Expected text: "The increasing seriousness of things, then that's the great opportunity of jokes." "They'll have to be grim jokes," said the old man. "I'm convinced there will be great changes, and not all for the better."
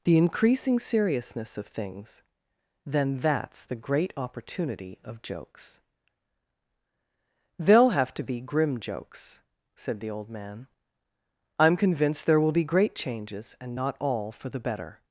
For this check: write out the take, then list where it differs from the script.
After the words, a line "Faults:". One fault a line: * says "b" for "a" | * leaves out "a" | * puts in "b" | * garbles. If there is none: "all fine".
"The increasing seriousness of things, then that's the great opportunity of jokes." "They'll have to be grim jokes," said the old man. "I'm convinced there will be great changes, and not all for the better."
Faults:
all fine